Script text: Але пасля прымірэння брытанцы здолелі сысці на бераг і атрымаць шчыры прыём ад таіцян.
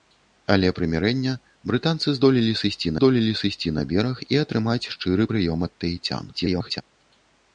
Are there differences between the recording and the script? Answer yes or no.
yes